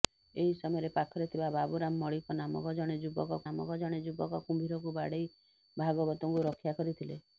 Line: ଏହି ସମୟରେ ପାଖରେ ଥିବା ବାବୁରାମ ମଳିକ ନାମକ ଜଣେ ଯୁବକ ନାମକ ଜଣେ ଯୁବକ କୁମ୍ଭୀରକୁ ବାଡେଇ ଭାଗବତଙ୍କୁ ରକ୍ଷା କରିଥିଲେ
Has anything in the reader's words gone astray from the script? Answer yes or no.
no